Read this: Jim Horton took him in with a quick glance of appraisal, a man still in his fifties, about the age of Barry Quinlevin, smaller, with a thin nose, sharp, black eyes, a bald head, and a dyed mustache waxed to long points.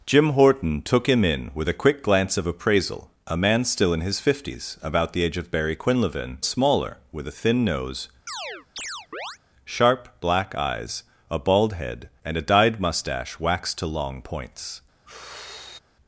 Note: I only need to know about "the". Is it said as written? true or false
true